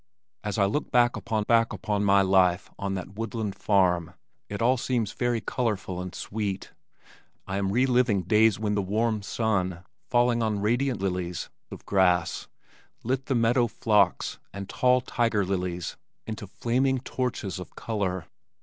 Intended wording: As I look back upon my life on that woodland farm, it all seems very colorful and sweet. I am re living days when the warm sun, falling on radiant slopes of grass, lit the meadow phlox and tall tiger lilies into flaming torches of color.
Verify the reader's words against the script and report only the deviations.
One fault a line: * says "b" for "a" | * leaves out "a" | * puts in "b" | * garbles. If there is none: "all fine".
* puts in "back upon"
* says "lilies" for "slopes"